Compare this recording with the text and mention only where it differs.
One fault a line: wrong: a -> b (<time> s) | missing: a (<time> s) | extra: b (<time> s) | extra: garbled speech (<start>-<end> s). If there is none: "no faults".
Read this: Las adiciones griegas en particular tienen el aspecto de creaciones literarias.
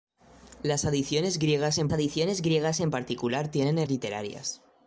extra: adiciones griegas en (1.9 s)
missing: aspecto de creaciones (3.9 s)